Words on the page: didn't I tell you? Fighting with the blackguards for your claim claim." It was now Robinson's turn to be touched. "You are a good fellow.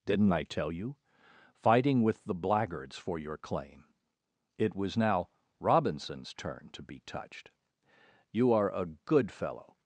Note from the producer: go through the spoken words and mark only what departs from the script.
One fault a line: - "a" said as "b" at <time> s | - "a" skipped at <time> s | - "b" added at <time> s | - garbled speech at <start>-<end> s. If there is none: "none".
- "claim" skipped at 3.9 s